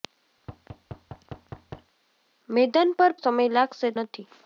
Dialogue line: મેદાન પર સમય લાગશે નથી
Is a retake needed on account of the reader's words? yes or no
no